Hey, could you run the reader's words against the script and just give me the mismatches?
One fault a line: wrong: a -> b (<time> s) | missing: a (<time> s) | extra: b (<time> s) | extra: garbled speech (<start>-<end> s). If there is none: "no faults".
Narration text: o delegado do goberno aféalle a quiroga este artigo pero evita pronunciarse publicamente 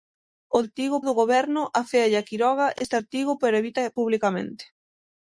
wrong: delegado -> artigo (0.7 s)
missing: pronunciarse (3.9 s)